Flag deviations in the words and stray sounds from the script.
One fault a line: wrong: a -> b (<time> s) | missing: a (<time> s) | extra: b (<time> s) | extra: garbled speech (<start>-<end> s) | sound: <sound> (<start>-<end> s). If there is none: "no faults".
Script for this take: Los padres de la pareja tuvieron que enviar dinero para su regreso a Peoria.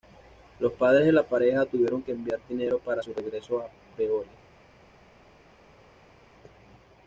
no faults